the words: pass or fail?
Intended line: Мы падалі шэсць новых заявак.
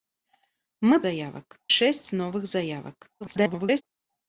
fail